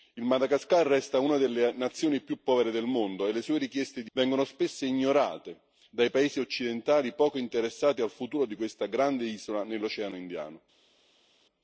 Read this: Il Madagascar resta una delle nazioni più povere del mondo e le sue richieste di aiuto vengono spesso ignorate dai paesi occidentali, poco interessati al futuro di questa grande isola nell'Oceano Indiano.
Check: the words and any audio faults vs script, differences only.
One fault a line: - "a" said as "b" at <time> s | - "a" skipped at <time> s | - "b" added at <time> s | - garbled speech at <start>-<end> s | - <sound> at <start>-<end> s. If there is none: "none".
- "aiuto" skipped at 4.1 s